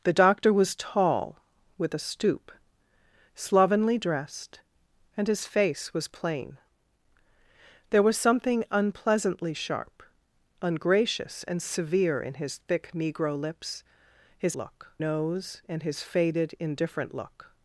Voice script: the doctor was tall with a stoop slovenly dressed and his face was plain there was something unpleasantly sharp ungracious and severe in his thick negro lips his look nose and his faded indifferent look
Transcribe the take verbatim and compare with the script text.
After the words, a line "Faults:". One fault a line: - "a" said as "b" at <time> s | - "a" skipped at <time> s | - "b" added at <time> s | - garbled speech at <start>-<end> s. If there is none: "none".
the doctor was tall with a stoop slovenly dressed and his face was plain there was something unpleasantly sharp ungracious and severe in his thick negro lips his look nose and his faded indifferent look
Faults:
none